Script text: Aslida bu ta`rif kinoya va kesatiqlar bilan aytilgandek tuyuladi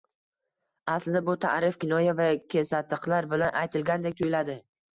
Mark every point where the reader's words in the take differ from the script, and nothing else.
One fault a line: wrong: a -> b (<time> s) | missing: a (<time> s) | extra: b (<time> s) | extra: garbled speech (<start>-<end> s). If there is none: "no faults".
no faults